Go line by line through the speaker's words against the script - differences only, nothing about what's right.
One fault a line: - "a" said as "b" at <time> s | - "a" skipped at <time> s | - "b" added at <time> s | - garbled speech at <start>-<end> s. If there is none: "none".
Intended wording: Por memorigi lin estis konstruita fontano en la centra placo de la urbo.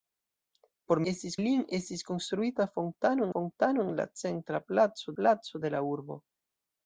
- "memorigi" said as "estis" at 1.1 s
- "fontano" added at 3.3 s
- "placo" added at 5.2 s